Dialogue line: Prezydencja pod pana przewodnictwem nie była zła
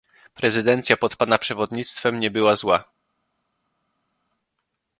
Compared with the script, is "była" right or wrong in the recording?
right